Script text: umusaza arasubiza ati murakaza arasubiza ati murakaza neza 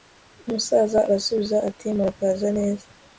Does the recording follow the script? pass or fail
fail